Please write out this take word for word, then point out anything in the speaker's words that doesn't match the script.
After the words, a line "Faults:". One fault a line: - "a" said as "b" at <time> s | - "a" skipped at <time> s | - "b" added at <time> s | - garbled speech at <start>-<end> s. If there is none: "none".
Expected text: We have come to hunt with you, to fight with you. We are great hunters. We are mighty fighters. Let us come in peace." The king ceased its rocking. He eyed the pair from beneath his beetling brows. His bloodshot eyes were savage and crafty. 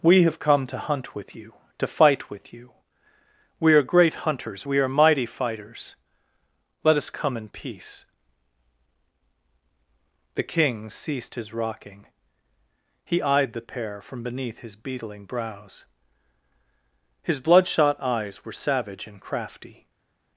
We have come to hunt with you, to fight with you. We are great hunters. We are mighty fighters. Let us come in peace." The king ceased his rocking. He eyed the pair from beneath his beetling brows. His bloodshot eyes were savage and crafty.
Faults:
- "its" said as "his" at 11.3 s